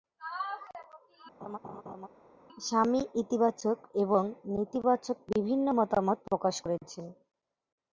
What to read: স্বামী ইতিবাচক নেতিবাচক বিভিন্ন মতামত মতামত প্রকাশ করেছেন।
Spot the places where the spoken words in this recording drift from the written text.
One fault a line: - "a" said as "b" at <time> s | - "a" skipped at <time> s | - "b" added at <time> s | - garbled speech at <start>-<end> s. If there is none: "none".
- "এবং" added at 4.0 s
- "মতামত" skipped at 6.2 s